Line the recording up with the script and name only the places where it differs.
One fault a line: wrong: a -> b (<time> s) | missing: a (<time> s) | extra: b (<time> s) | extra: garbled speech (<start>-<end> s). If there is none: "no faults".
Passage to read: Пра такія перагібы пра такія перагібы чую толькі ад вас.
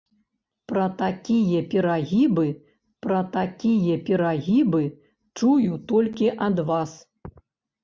no faults